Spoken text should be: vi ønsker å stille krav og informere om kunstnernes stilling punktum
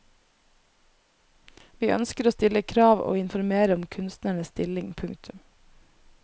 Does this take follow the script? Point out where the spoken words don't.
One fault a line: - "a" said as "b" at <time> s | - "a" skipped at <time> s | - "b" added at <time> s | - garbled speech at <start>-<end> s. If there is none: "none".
none